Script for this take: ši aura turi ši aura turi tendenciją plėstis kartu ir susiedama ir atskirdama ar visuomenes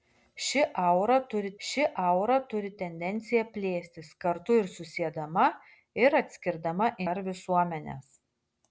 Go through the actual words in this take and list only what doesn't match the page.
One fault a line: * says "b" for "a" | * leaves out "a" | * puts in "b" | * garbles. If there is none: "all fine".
all fine